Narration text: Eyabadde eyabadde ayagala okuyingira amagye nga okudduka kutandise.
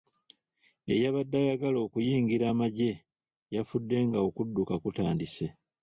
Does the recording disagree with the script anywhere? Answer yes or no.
yes